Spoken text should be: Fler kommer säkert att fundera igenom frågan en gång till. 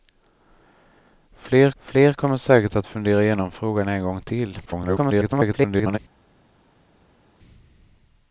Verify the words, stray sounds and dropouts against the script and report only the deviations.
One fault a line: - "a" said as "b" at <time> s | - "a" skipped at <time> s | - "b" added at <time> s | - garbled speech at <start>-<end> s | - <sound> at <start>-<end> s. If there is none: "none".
- "fler" added at 1.8 s
- garbled speech at 4.7-6.0 s